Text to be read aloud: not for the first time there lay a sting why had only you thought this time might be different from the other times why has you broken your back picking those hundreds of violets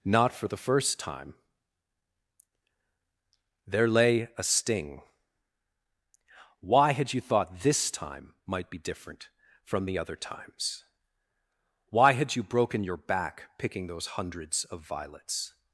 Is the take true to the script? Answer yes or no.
no